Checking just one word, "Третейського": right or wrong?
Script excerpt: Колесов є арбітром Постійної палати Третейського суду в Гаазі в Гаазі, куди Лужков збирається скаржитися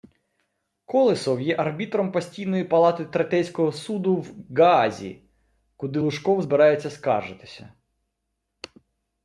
right